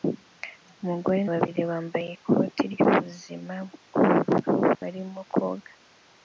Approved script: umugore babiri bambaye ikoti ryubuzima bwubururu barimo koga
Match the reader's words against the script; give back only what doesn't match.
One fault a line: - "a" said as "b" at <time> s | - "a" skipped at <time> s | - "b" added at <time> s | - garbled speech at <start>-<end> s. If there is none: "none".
none